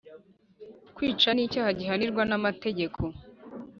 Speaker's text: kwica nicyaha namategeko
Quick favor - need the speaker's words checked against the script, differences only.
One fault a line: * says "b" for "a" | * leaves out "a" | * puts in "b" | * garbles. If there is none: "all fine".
* puts in "gihanirwa"